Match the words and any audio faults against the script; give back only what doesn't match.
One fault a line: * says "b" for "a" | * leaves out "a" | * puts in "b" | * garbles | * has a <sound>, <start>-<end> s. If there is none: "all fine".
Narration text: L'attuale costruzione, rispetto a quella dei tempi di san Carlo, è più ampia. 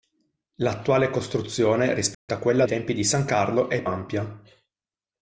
* has a dropout, 2.1-2.3 s
* leaves out "dei"
* leaves out "più"